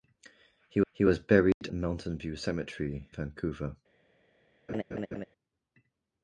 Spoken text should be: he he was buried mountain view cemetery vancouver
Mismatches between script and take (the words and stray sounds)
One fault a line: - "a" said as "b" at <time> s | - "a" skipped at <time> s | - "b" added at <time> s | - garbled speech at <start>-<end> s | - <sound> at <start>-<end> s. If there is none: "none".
- dropout at 1.5-1.6 s
- laugh at 4.7-5.3 s